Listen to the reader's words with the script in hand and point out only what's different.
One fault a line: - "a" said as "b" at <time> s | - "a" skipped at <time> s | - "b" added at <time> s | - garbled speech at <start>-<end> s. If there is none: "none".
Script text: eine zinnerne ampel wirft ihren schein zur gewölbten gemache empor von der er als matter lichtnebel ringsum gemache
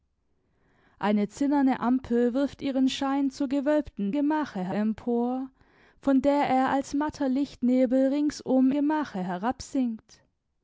none